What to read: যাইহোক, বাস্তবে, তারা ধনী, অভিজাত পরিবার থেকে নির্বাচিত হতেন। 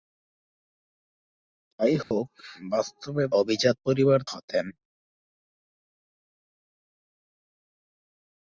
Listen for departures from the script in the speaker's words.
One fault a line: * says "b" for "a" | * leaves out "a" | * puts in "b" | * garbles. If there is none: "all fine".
* leaves out "তারা ধনী"
* leaves out "থেকে নির্বাচিত"